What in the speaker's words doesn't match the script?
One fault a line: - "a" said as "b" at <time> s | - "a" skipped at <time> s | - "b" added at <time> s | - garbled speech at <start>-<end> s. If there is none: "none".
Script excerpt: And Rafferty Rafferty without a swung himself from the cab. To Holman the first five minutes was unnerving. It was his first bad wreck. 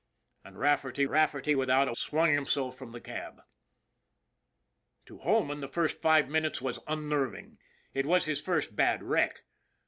none